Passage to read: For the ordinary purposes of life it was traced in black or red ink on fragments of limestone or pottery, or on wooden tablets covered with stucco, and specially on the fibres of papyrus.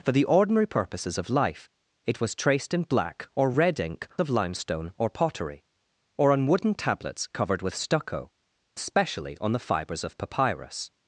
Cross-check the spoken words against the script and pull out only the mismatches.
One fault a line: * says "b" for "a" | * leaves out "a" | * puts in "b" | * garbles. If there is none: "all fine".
* leaves out "on fragments"
* leaves out "and"